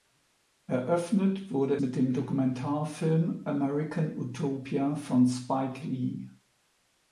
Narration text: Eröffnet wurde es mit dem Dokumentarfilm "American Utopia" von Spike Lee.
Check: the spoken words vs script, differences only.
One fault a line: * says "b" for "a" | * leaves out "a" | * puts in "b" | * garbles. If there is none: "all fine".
* leaves out "es"